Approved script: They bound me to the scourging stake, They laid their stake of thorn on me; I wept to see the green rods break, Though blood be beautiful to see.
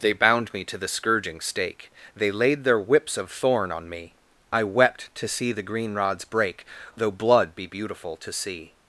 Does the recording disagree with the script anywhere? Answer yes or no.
yes